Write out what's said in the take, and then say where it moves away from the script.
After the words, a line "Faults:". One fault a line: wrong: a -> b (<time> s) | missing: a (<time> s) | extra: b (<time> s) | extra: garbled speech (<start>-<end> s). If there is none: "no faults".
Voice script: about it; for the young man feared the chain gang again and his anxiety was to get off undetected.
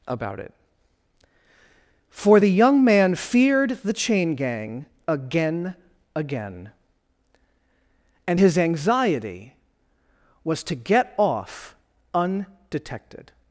about it; for the young man feared the chain gang again again and his anxiety was to get off undetected.
Faults:
extra: again (6.1 s)